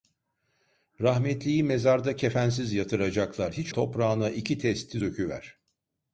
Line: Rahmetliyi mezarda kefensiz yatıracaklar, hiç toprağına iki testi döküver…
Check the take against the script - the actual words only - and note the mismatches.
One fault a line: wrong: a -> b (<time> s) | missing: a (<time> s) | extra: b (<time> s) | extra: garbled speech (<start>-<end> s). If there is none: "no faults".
no faults